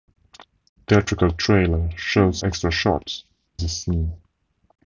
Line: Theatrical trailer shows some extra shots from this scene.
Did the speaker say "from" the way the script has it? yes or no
no